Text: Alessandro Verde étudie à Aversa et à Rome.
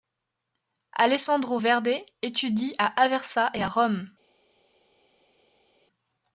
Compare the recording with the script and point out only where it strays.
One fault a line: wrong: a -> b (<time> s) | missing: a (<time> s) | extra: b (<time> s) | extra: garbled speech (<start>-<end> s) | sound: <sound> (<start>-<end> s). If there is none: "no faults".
no faults